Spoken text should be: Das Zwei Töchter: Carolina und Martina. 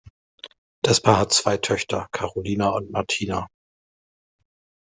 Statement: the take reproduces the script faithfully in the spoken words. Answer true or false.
false